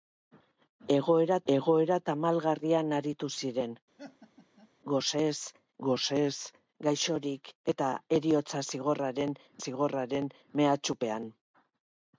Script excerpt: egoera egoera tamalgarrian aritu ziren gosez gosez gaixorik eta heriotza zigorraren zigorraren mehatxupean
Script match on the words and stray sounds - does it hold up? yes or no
no